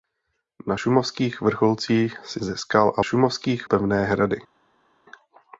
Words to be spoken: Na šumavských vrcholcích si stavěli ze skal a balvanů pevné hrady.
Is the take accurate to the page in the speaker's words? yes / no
no